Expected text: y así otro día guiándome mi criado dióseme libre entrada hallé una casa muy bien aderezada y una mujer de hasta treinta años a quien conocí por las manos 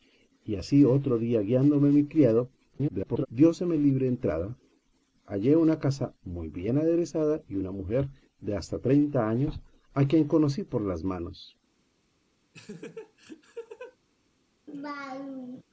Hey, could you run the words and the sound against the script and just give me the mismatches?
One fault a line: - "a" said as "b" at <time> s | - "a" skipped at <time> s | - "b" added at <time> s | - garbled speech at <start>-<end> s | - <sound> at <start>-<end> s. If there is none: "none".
- garbled speech at 2.7-3.3 s
- laugh at 12.5-14.0 s
- laugh at 14.7-15.6 s